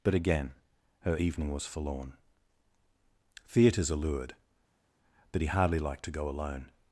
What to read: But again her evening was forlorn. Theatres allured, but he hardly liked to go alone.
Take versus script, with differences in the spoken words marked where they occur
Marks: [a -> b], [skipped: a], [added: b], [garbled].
But again her evening was forlorn. Theatres allured, but he hardly liked to go alone.